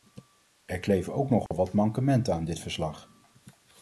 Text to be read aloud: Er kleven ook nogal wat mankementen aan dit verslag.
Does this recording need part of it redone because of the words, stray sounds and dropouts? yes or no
yes